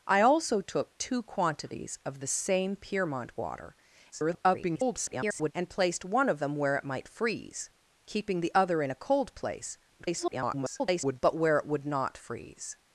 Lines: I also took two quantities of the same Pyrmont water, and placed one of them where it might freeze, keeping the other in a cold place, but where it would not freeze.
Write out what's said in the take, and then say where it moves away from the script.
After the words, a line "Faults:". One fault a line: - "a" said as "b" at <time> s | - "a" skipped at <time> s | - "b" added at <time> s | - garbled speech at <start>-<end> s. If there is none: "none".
I also took two quantities of the same Pyrmont water, [garbled] and placed one of them where it might freeze, keeping the other in a cold place, [garbled] but where it would not freeze.
Faults:
- garbled speech at 4.1-5.5 s
- garbled speech at 10.0-11.2 s